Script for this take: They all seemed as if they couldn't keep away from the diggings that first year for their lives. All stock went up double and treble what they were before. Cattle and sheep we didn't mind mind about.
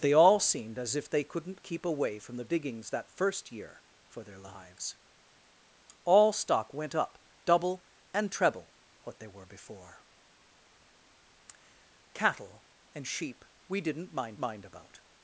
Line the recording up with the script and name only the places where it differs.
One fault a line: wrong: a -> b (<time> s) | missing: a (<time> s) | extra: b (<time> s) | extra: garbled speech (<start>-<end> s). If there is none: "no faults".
no faults